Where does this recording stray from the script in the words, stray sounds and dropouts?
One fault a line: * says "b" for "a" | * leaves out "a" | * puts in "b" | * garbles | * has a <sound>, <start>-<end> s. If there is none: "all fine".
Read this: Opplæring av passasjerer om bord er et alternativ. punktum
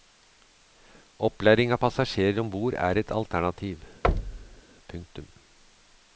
* has a thud, 4.0-4.6 s